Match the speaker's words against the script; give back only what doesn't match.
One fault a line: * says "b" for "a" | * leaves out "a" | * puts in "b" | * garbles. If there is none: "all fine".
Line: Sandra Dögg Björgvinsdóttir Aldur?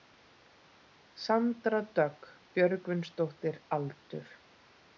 all fine